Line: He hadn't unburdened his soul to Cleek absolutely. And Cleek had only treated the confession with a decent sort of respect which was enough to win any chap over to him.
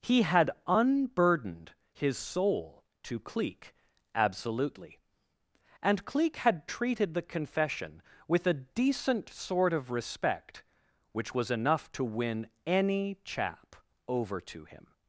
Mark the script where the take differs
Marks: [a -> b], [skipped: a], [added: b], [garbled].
He [hadn't -> had] unburdened his soul to Cleek absolutely. And Cleek had [skipped: only] treated the confession with a decent sort of respect which was enough to win any chap over to him.